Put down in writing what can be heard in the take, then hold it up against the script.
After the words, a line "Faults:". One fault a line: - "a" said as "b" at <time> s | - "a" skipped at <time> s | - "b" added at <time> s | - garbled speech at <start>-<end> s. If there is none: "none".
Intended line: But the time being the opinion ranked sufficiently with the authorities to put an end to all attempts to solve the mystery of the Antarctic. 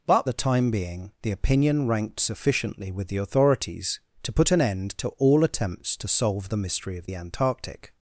But the time being the opinion ranked sufficiently with the authorities to put an end to all attempts to solve the mystery of the Antarctic.
Faults:
none